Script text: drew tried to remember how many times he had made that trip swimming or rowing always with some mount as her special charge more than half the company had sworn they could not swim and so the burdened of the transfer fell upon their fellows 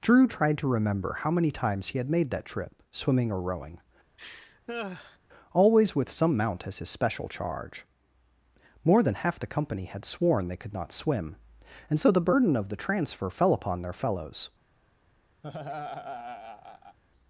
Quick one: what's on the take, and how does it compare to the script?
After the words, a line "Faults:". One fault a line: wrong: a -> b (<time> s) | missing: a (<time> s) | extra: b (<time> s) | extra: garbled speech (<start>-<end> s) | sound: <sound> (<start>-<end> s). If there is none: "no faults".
drew tried to remember how many times he had made that trip swimming or rowing always with some mount as his special charge more than half the company had sworn they could not swim and so the burden of the transfer fell upon their fellows
Faults:
sound: laugh (4.2-5.2 s)
wrong: her -> his (6.8 s)
wrong: burdened -> burden (12.2 s)
sound: laugh (15.4-17.0 s)